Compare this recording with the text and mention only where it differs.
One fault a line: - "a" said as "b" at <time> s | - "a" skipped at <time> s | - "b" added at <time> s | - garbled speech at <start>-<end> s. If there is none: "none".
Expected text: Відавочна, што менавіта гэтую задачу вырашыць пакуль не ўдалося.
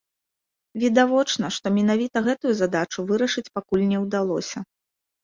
none